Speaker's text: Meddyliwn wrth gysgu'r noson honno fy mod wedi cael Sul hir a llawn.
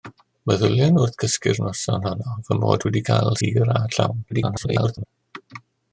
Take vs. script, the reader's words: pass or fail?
fail